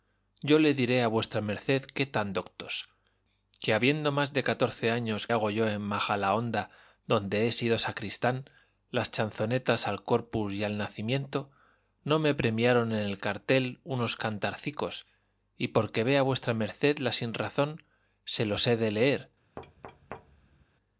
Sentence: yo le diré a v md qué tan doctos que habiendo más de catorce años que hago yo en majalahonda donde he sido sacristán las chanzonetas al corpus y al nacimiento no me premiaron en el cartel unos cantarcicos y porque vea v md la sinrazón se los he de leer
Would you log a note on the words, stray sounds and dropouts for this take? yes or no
yes